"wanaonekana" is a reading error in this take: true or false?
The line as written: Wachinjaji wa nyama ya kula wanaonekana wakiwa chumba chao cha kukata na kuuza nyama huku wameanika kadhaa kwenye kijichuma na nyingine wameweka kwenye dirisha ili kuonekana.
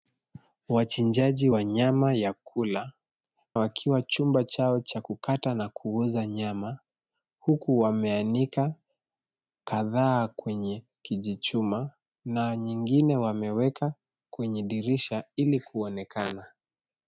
true